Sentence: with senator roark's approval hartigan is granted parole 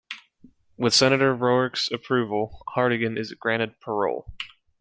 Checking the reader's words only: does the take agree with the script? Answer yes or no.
yes